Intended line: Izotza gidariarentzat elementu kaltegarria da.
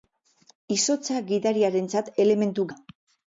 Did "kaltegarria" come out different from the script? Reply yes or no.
yes